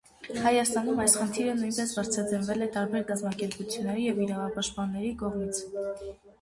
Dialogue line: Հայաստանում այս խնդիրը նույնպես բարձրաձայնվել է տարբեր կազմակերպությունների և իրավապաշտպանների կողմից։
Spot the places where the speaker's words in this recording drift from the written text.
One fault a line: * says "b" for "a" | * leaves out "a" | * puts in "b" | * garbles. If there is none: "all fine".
all fine